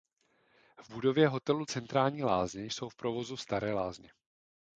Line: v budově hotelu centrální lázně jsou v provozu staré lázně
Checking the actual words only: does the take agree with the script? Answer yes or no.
yes